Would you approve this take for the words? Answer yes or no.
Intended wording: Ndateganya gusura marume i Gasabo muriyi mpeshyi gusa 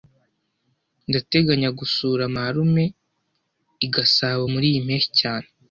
no